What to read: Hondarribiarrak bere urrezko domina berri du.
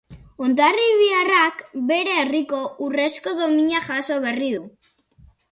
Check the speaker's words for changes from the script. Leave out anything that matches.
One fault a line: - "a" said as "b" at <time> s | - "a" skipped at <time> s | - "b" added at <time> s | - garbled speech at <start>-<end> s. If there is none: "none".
- "herriko" added at 2.2 s
- "jaso" added at 3.9 s